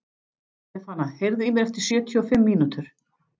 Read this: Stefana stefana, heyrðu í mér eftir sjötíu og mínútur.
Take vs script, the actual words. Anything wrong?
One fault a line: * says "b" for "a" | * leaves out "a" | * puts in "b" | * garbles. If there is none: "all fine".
* leaves out "stefana"
* puts in "fimm"